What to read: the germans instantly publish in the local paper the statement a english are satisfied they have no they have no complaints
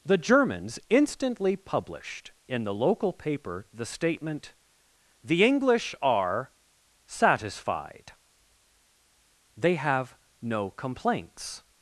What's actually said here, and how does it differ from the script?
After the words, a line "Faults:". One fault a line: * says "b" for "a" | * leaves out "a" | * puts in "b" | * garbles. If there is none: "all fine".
the germans instantly published in the local paper the statement the english are satisfied they have no complaints
Faults:
* says "published" for "publish"
* says "the" for "a"
* leaves out "they have no"